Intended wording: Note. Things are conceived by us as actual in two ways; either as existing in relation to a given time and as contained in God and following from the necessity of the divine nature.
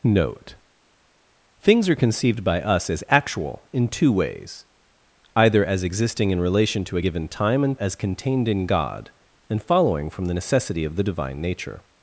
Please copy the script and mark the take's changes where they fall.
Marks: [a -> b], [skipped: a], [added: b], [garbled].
Note. Things are conceived by us as actual in two ways; either as existing in relation to a given time and as contained in God and following from the necessity of the divine nature.